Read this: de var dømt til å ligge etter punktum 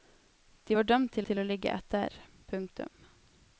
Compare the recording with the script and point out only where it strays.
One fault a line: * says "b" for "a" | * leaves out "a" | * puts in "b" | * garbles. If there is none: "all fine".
* puts in "til"